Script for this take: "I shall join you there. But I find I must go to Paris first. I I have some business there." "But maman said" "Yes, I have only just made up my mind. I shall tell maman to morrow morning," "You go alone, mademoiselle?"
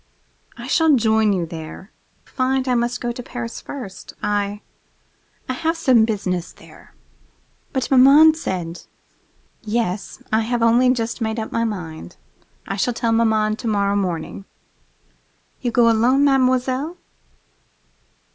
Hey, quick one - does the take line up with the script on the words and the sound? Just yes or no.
no